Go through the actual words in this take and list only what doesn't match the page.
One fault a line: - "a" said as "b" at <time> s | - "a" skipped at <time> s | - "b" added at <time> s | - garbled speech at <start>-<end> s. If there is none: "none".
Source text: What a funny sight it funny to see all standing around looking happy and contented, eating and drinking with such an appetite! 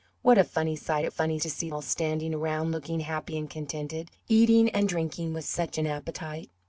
none